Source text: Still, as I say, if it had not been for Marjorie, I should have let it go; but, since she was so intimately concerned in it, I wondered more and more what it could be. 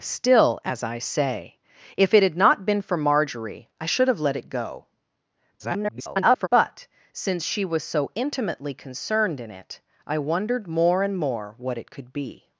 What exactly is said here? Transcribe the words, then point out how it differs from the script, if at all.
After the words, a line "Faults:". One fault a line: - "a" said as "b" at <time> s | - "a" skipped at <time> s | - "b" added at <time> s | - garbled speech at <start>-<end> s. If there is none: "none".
Still, as I say, if it had not been for Marjorie, I should have let it go; [garbled] but, since she was so intimately concerned in it, I wondered more and more what it could be.
Faults:
- garbled speech at 5.6-6.5 s